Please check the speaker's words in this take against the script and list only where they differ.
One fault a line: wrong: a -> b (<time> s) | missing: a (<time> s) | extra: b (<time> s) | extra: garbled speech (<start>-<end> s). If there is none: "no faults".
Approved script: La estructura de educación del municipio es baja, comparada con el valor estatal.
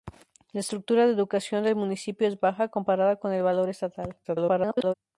extra: garbled speech (4.2-4.9 s)